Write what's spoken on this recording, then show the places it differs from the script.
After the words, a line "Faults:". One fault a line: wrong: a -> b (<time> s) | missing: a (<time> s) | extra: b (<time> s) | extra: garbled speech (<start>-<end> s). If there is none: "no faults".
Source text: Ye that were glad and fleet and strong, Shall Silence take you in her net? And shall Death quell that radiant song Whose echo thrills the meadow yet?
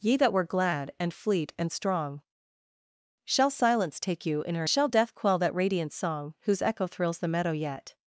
Ye that were glad and fleet and strong, Shall Silence take you in her shall Death quell that radiant song Whose echo thrills the meadow yet?
Faults:
missing: net And (4.7 s)